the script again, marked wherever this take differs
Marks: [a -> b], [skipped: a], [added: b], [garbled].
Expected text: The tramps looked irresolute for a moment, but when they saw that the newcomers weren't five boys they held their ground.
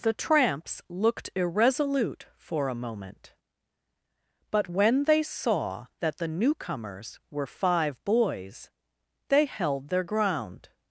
The tramps looked irresolute for a moment, but when they saw that the newcomers [weren't -> were] five boys they held their ground.